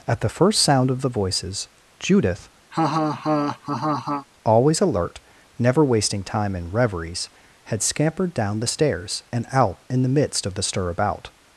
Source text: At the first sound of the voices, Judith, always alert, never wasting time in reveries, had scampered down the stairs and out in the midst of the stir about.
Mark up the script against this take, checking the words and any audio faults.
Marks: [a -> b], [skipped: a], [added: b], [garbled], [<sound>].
At the first sound of the voices, Judith, [laugh] always alert, never wasting time in reveries, had scampered down the stairs and out in the midst of the stir about.